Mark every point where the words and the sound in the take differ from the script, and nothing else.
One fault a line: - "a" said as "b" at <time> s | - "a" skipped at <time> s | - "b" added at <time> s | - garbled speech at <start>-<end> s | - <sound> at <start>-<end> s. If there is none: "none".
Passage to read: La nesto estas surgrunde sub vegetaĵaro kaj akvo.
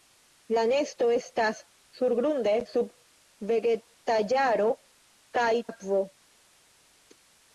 none